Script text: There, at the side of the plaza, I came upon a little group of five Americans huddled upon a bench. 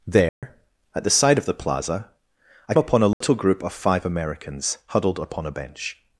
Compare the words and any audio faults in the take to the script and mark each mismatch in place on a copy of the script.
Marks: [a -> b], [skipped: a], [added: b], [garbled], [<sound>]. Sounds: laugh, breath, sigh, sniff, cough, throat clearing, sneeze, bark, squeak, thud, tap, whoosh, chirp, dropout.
There, [dropout] at the side of the plaza, I [skipped: came] upon a little [dropout] group of five Americans huddled upon a bench.